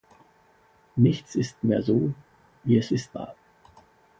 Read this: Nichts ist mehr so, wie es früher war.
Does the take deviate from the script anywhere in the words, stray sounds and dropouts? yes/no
yes